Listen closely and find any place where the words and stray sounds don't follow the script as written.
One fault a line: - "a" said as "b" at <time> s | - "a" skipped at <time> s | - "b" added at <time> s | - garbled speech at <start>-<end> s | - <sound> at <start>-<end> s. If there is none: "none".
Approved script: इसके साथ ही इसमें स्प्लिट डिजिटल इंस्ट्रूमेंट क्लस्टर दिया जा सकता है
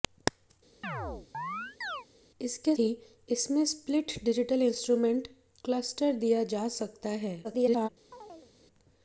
- chirp at 0.8-2.1 s
- "साथ" skipped at 2.7 s
- garbled speech at 7.4-7.9 s
- chirp at 8.1-8.5 s